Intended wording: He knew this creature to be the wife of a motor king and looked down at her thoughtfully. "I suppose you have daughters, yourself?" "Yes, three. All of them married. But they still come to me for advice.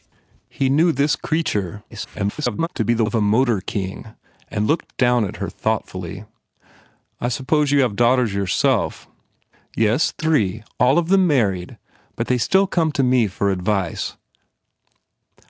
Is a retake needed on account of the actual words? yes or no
yes